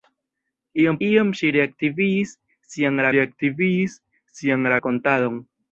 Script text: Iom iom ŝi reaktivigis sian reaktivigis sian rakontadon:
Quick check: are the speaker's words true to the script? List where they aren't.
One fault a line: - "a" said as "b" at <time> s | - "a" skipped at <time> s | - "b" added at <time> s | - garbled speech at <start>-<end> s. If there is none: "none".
none